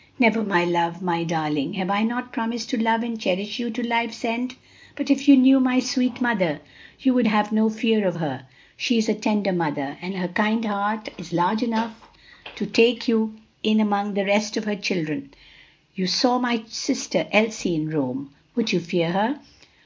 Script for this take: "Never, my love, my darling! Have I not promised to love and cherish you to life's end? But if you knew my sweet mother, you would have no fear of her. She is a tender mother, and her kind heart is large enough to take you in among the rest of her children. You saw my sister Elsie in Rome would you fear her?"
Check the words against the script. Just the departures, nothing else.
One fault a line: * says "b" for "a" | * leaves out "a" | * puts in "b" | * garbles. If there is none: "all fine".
all fine